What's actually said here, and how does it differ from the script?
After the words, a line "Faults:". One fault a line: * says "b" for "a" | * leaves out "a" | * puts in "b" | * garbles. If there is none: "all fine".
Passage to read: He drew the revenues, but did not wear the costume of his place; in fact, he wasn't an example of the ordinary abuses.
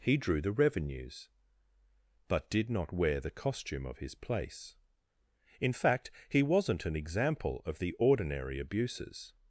He drew the revenues, but did not wear the costume of his place; in fact, he wasn't an example of the ordinary abuses.
Faults:
all fine